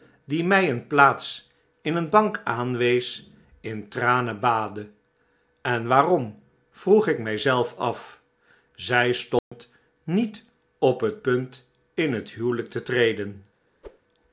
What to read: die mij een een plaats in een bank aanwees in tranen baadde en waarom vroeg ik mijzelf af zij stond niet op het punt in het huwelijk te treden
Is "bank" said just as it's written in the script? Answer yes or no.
yes